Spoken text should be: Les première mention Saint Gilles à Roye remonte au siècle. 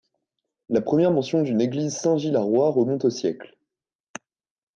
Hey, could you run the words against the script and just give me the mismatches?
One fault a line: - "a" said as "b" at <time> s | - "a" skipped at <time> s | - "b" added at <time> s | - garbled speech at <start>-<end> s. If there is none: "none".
- "Les" said as "La" at 0.7 s
- "d'une église" added at 1.4 s